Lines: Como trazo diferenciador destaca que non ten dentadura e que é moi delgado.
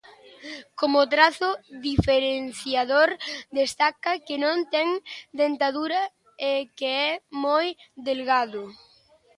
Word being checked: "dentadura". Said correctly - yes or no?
yes